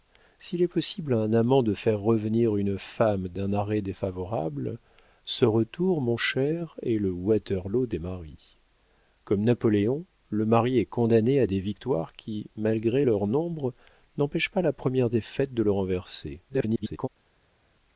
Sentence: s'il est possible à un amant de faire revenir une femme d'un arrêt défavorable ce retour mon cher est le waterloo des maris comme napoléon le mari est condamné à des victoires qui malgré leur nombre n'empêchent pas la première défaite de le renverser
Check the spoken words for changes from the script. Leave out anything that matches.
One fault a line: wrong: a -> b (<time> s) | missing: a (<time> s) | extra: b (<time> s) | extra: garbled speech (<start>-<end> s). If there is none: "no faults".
extra: garbled speech (16.5-17.1 s)